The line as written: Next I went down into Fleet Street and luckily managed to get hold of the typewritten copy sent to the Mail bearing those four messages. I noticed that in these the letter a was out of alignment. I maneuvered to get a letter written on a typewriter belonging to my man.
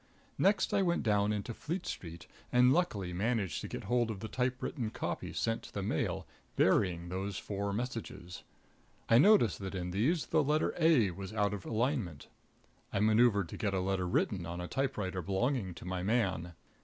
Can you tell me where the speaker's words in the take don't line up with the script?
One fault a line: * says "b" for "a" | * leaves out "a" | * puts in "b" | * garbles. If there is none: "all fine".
all fine